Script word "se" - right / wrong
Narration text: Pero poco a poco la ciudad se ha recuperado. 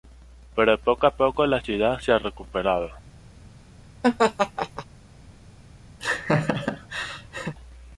right